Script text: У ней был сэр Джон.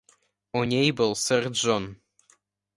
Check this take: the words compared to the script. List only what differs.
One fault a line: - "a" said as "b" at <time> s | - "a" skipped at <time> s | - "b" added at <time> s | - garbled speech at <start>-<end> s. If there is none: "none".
none